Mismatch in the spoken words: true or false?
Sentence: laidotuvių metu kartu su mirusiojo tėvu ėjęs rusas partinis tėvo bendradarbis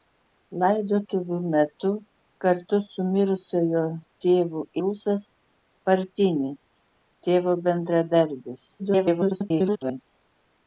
true